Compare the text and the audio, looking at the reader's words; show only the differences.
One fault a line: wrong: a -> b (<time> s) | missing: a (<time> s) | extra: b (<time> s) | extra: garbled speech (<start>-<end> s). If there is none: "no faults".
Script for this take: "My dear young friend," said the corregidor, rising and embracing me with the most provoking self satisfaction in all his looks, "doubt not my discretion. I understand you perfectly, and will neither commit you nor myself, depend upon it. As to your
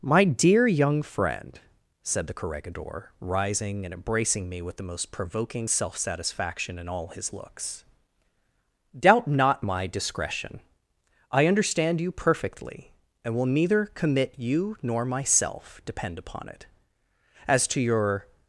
no faults